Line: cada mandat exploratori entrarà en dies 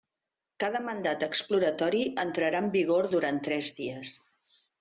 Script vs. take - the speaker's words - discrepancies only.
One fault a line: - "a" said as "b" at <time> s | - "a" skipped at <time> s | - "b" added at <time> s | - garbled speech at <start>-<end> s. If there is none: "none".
- "vigor durant tres" added at 2.8 s